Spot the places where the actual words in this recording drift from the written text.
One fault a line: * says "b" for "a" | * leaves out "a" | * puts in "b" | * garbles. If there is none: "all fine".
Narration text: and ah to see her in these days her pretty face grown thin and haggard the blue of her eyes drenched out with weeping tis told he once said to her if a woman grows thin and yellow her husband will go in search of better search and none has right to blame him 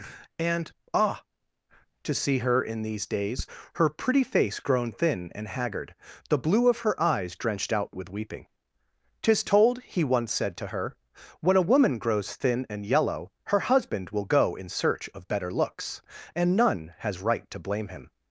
* says "when" for "if"
* says "looks" for "search"